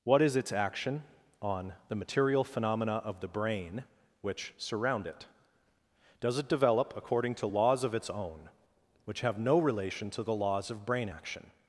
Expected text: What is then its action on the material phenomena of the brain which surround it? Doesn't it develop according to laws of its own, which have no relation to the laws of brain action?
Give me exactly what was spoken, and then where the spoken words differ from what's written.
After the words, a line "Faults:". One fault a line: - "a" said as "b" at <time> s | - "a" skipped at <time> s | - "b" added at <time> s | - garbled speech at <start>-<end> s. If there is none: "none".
What is its action on the material phenomena of the brain which surround it? Does it develop according to laws of its own, which have no relation to the laws of brain action?
Faults:
- "then" skipped at 0.3 s
- "Doesn't" said as "Does" at 6.2 s